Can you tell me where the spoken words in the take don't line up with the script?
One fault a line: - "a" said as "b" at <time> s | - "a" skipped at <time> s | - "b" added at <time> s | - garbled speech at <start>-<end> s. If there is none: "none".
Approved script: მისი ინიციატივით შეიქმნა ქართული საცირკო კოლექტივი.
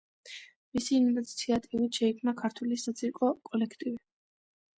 none